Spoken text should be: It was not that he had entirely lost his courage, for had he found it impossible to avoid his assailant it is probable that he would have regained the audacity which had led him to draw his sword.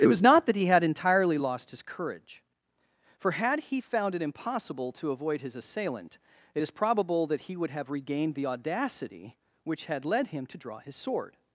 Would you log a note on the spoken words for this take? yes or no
no